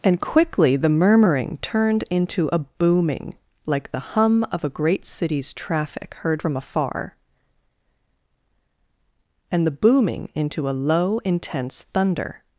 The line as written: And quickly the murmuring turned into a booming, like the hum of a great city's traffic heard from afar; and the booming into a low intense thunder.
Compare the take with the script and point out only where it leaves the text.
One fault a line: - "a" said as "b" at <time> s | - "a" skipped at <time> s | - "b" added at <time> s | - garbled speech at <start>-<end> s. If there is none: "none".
none